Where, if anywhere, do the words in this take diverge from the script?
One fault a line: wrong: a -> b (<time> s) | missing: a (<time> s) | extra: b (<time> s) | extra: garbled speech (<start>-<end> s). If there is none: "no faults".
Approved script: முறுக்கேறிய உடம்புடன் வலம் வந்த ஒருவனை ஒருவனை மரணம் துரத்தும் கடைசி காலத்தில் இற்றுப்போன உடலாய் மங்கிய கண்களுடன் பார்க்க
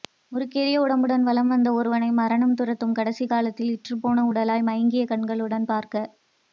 missing: ஒருவனை (2.1 s)